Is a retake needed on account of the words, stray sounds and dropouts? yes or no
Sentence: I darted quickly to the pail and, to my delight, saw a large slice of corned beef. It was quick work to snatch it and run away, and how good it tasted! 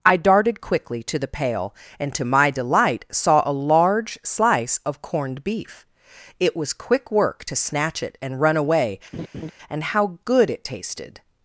yes